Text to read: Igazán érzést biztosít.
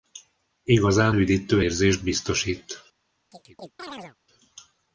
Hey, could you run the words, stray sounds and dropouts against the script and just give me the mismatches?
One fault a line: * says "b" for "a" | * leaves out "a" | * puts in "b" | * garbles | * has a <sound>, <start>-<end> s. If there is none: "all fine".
* puts in "üdítő"
* has a chirp, 3.3-4.2 s